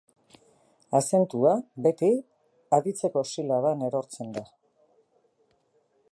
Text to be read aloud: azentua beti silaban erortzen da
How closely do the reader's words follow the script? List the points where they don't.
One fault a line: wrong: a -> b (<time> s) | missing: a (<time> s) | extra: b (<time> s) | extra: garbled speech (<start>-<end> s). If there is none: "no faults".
extra: aditzeko (2.8 s)